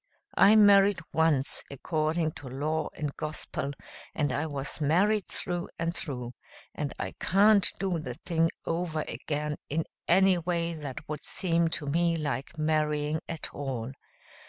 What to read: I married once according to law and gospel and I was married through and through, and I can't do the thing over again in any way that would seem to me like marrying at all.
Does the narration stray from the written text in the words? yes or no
no